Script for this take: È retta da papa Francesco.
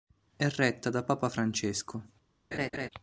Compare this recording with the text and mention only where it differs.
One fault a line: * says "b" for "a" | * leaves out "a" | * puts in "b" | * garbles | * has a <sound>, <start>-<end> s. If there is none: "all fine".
* has a laugh, 2.5-2.9 s